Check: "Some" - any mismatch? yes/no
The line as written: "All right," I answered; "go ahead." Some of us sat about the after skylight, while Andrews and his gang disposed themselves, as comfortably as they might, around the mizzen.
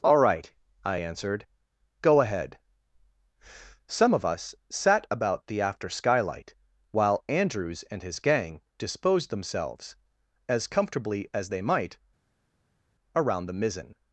no